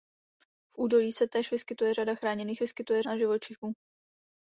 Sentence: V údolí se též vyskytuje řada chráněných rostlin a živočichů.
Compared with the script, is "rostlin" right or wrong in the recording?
wrong